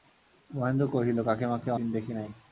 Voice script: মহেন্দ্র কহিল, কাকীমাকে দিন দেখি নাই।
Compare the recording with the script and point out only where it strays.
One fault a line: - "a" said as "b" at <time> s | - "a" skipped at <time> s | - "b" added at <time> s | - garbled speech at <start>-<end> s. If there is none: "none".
none